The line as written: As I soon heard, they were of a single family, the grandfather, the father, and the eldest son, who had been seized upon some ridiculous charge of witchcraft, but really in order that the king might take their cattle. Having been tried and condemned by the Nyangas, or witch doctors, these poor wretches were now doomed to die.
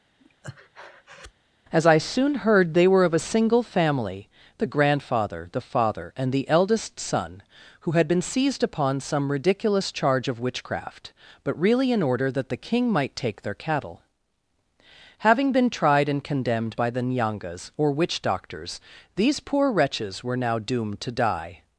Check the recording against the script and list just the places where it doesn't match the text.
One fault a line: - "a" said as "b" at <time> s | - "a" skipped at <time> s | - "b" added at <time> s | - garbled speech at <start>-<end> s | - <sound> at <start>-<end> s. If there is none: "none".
- breath at 0.2-1.3 s